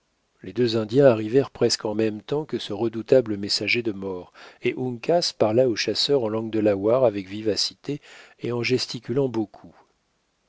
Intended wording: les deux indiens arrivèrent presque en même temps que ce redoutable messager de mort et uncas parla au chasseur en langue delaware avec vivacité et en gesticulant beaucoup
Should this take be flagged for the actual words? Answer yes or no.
no